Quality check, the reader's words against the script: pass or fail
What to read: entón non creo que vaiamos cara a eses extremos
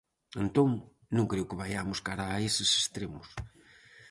pass